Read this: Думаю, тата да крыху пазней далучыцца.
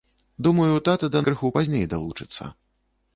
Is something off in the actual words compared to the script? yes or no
no